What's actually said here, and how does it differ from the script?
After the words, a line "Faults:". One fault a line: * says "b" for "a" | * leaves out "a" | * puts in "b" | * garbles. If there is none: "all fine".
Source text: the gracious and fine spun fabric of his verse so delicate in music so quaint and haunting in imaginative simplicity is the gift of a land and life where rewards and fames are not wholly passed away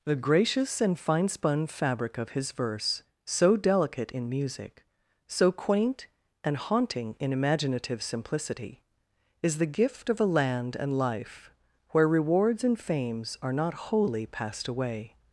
the gracious and fine spun fabric of his verse so delicate in music so quaint and haunting in imaginative simplicity is the gift of a land and life where rewards and fames are not wholly passed away
Faults:
all fine